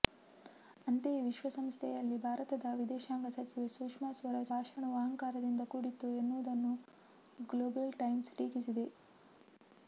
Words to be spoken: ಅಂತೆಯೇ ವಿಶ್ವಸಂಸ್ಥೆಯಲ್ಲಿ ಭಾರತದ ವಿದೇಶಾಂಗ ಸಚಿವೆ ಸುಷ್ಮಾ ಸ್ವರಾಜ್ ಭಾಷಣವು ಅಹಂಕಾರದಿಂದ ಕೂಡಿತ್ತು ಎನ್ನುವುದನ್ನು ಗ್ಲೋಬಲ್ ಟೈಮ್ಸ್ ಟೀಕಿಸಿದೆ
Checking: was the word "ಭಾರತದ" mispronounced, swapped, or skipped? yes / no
no